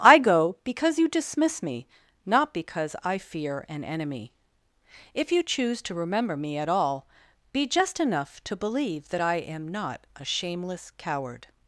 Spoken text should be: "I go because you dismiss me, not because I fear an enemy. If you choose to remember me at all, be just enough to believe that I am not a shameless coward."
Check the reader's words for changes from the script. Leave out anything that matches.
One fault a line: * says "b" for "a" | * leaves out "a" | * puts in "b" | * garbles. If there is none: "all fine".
all fine